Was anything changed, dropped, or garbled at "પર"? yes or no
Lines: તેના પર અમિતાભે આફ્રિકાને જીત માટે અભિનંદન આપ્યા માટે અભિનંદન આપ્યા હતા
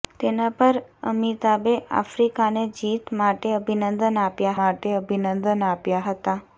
no